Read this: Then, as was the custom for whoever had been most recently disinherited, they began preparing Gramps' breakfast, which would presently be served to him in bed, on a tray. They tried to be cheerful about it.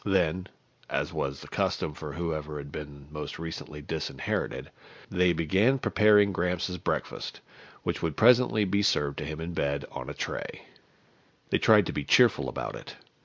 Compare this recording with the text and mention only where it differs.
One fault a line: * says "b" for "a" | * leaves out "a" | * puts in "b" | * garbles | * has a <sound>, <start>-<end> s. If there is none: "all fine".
all fine